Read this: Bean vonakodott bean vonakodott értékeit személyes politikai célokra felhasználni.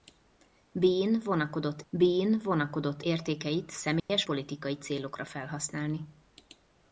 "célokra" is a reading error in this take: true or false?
false